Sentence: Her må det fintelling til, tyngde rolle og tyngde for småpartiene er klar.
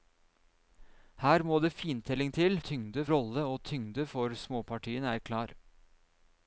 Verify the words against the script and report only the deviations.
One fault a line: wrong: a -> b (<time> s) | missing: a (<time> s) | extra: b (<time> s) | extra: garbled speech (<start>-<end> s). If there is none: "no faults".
no faults